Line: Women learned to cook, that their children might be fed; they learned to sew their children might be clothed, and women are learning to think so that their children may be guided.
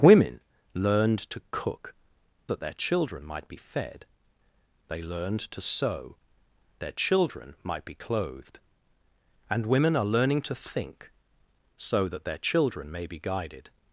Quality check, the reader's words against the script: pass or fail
pass